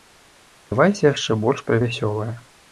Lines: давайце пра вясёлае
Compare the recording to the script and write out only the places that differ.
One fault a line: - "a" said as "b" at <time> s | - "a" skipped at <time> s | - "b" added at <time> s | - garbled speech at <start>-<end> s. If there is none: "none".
- "яшчэ больш" added at 1.1 s